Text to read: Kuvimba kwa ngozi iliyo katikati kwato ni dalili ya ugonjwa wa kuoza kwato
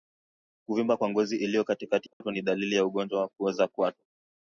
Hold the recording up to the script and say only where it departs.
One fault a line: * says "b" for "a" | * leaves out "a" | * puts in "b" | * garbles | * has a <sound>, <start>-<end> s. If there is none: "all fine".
* has a dropout, 2.1-2.2 s